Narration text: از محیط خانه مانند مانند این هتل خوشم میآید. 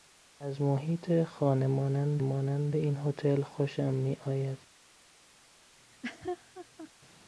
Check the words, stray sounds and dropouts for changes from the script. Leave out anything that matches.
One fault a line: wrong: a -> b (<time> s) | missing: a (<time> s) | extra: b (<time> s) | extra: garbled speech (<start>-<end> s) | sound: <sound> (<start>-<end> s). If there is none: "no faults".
sound: laugh (5.8-6.9 s)